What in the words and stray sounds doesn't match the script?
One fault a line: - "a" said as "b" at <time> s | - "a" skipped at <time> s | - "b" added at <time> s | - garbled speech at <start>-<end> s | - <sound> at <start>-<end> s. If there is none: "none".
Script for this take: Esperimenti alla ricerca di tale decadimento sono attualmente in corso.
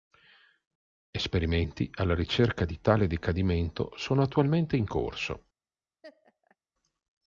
- laugh at 6.0-6.6 s